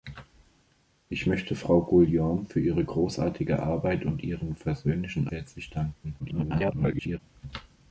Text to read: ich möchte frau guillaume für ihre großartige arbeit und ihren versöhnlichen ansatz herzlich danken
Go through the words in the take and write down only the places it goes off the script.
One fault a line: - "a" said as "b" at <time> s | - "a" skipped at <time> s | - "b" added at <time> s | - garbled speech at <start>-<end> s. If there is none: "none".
- "ansatz" skipped at 5.3 s
- garbled speech at 6.2-7.2 s